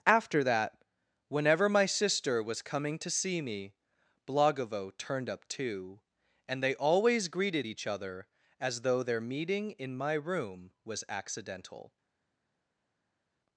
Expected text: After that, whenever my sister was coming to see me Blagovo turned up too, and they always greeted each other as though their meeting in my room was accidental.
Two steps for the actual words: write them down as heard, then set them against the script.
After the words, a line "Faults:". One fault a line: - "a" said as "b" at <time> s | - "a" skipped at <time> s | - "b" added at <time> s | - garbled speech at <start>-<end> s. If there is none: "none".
After that, whenever my sister was coming to see me Blagovo turned up too, and they always greeted each other as though their meeting in my room was accidental.
Faults:
none